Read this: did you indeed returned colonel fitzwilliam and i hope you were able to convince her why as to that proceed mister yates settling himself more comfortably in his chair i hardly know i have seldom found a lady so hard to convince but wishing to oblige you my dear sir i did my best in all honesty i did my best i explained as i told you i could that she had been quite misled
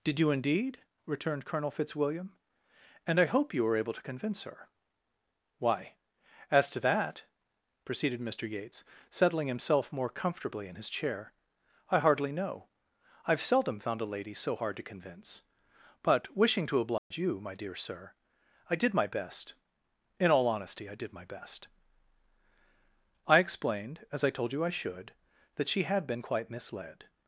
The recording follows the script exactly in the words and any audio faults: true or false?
false